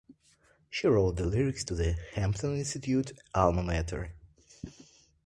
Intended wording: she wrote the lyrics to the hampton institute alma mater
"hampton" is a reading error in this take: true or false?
false